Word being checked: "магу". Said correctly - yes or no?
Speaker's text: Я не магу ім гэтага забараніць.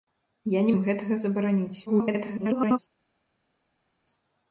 no